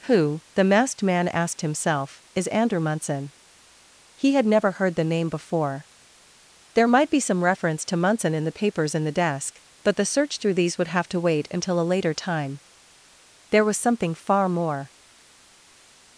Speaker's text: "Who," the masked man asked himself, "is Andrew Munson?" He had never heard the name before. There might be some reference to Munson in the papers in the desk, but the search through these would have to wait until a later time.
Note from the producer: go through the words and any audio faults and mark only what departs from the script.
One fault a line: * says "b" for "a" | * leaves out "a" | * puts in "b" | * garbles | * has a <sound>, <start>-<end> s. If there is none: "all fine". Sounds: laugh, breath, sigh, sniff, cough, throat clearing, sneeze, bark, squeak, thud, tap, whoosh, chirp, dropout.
* puts in "There was something far more"